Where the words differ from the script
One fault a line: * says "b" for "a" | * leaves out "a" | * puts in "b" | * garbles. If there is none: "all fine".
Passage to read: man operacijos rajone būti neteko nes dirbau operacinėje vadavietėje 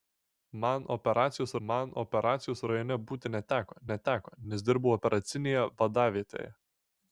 * puts in "man operacijos"
* puts in "neteko"